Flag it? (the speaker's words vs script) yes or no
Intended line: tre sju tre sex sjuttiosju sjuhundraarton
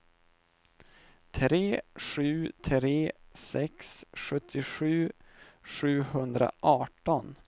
no